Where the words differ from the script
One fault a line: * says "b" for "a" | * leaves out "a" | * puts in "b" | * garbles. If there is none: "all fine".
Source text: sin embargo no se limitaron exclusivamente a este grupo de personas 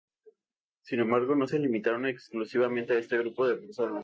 all fine